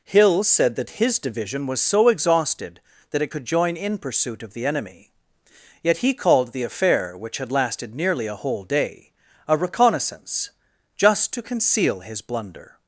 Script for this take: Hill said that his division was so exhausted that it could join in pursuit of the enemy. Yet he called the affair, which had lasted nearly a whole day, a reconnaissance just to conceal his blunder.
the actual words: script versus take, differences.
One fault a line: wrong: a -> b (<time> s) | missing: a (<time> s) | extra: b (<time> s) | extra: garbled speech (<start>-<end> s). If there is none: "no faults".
no faults